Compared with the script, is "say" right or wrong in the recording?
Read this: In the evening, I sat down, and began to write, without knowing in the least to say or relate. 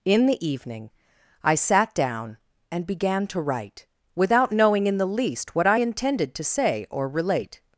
right